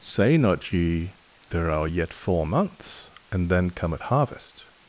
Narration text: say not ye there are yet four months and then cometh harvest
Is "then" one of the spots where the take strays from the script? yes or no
no